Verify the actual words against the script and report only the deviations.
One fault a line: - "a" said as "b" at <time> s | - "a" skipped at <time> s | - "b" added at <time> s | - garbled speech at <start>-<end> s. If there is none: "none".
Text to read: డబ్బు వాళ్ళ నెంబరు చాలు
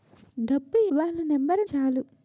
none